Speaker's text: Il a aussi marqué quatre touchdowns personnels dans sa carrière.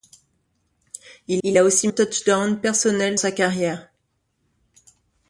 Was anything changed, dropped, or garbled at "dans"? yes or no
yes